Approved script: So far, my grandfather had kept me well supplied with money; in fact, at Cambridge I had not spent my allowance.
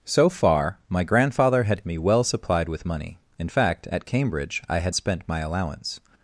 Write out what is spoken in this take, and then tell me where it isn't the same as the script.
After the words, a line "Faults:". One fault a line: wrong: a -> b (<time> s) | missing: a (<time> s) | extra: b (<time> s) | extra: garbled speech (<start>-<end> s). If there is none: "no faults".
So far, my grandfather had me well supplied with money; in fact, at Cambridge I had spent my allowance.
Faults:
missing: kept (1.8 s)
missing: not (4.9 s)